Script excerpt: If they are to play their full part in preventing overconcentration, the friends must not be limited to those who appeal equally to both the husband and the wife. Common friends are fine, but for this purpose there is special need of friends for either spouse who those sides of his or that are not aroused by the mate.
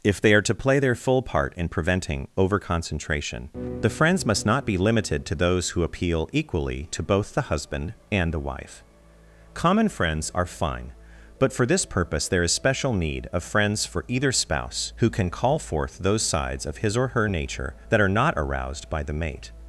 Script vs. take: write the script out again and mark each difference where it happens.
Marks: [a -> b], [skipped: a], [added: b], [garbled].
If they are to play their full part in preventing overconcentration, the friends must not be limited to those who appeal equally to both the husband and the wife. Common friends are fine, but for this purpose there is special need of friends for either spouse who [added: can call forth] those sides of his or [added: her nature] that are not aroused by the mate.